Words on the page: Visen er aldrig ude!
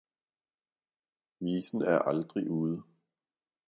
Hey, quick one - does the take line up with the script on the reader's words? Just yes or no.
yes